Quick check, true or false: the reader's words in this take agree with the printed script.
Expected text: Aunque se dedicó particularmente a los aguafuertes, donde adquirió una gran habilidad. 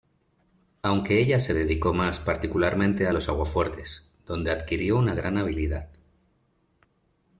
false